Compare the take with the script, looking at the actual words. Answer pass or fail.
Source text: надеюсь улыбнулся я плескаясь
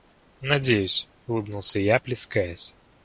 pass